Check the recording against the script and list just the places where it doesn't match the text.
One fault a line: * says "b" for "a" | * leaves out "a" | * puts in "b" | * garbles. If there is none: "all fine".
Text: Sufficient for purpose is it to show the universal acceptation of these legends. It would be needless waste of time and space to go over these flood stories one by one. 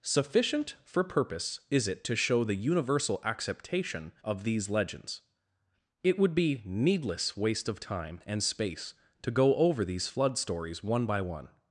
all fine